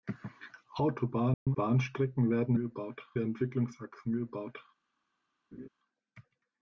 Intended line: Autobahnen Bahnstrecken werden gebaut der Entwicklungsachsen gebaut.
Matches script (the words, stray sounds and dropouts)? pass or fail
fail